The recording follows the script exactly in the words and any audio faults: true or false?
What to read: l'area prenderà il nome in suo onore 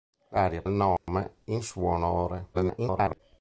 false